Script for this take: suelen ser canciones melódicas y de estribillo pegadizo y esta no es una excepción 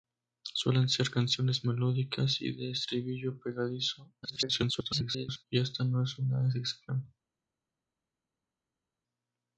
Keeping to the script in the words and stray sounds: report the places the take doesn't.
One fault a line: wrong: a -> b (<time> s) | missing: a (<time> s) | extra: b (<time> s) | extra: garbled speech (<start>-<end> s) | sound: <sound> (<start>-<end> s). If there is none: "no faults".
extra: garbled speech (4.2-5.4 s)